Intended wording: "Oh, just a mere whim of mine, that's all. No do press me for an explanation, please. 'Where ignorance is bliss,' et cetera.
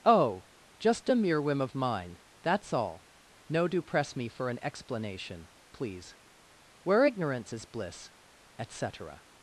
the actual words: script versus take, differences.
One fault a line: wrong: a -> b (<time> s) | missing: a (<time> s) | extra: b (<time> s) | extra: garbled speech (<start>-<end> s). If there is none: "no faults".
no faults